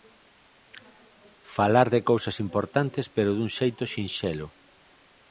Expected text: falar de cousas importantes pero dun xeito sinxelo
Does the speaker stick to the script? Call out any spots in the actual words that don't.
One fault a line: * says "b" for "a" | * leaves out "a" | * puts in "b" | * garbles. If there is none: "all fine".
all fine